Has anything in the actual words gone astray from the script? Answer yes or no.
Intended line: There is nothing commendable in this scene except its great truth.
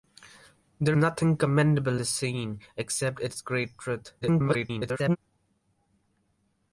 yes